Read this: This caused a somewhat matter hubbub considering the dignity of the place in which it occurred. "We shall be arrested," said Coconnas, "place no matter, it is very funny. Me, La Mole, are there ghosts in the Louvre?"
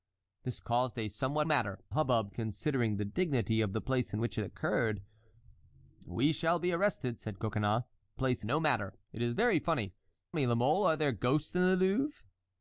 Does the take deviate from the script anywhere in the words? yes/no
no